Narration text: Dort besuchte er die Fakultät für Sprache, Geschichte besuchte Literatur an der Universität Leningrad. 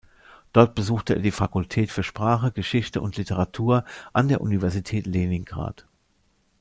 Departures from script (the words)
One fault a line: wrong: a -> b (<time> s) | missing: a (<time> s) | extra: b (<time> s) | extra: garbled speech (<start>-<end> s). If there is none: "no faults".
wrong: besuchte -> und (3.0 s)